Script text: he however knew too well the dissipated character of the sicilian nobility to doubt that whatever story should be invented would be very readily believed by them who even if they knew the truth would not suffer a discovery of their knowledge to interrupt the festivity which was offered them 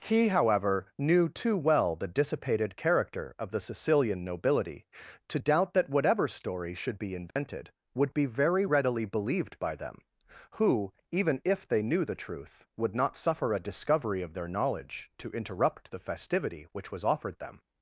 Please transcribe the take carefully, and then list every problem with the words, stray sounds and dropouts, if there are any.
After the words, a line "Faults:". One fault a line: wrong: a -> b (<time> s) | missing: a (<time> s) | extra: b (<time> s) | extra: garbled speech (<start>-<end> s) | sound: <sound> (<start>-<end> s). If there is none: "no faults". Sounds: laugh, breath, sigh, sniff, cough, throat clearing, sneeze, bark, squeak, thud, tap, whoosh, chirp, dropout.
he however knew too well the dissipated character of the sicilian nobility to doubt that whatever story should be invented would be very readily believed by them who even if they knew the truth would not suffer a discovery of their knowledge to interrupt the festivity which was offered them
Faults:
sound: dropout (7.3-7.4 s)